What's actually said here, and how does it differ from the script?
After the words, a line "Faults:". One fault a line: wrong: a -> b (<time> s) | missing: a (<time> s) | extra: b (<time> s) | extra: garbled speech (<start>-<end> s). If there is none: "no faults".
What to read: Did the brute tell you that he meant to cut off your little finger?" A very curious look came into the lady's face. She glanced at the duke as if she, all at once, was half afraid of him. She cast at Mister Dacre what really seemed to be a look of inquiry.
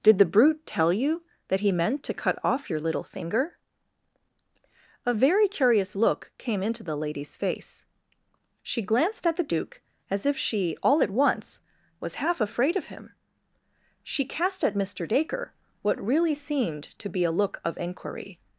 Did the brute tell you that he meant to cut off your little finger?" A very curious look came into the lady's face. She glanced at the duke as if she, all at once, was half afraid of him. She cast at Mister Dacre what really seemed to be a look of inquiry.
Faults:
no faults